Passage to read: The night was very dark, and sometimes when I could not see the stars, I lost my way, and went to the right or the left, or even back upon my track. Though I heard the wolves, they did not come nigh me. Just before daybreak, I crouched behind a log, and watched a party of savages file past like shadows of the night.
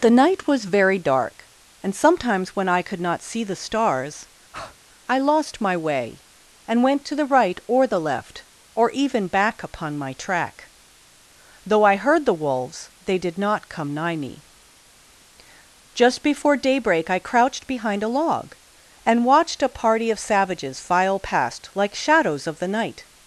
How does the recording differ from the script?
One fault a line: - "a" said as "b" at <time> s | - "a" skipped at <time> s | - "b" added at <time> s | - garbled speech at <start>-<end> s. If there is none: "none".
none